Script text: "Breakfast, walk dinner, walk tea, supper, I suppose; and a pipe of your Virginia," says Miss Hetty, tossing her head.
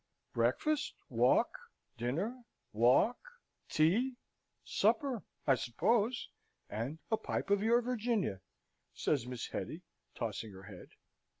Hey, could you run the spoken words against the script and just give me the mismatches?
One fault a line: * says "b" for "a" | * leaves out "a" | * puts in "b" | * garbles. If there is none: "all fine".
all fine